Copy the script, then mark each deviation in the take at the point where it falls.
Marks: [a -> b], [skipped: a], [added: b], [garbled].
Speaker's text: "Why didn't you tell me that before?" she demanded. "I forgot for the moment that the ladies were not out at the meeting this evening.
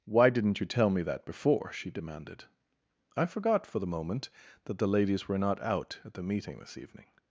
"Why didn't you tell me that before?" she demanded. "I forgot for the moment that the ladies were not out at the meeting this evening.